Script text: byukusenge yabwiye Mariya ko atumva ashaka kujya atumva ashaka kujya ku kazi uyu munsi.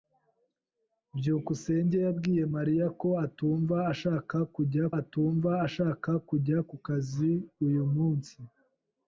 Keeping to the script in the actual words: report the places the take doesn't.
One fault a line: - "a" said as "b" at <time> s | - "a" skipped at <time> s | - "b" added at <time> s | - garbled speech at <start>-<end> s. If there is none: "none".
none